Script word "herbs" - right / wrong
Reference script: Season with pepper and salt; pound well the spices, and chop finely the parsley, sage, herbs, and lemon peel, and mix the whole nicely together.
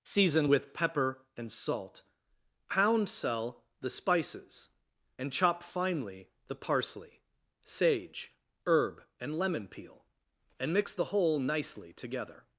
wrong